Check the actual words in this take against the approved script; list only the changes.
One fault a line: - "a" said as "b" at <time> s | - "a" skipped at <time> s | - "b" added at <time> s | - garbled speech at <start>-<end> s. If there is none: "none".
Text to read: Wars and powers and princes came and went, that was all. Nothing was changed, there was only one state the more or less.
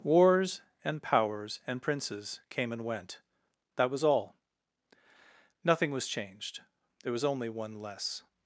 - "state the more or" skipped at 7.8 s